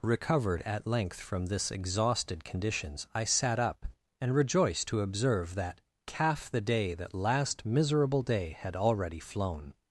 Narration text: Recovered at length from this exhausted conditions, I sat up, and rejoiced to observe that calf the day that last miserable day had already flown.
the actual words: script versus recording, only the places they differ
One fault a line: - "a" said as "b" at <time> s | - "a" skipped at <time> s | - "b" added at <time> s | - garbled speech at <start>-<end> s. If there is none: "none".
none